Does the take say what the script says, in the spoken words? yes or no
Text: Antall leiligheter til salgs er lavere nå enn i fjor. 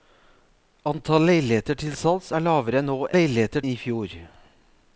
no